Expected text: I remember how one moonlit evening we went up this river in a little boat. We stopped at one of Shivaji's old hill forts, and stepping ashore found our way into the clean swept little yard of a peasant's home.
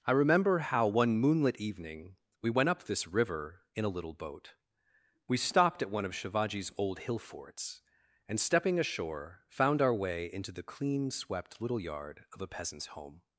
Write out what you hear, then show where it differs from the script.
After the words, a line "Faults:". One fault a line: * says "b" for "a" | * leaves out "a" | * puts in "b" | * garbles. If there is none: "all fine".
I remember how one moonlit evening we went up this river in a little boat. We stopped at one of Shivaji's old hill forts, and stepping ashore found our way into the clean swept little yard of a peasant's home.
Faults:
all fine